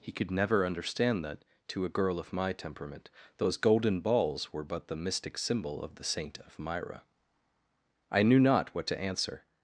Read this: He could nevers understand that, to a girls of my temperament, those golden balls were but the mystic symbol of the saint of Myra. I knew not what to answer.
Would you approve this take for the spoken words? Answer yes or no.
no